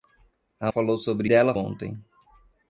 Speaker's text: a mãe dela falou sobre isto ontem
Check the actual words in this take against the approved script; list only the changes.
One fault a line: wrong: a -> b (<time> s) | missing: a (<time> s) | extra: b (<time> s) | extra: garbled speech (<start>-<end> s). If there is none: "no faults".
missing: mãe dela (0.7 s)
wrong: isto -> dela (1.3 s)